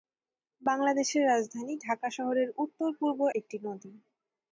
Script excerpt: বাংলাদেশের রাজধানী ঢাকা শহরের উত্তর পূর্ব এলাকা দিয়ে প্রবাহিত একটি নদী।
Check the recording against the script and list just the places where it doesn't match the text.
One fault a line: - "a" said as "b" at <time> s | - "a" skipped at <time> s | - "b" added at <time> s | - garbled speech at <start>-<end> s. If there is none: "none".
- "এলাকা দিয়ে প্রবাহিত" skipped at 3.2 s